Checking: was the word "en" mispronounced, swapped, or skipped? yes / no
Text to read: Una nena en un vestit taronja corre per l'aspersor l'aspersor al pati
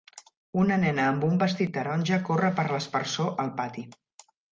yes